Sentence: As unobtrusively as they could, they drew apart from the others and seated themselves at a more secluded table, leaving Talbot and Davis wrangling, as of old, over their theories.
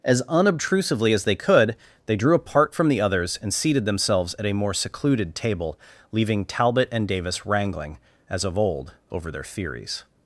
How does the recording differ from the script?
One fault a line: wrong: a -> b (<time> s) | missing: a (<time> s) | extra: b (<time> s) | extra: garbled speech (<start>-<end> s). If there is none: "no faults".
no faults